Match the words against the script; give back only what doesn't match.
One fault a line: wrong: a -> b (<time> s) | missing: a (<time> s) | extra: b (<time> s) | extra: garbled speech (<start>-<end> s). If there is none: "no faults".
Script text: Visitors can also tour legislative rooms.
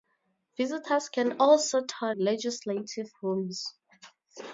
no faults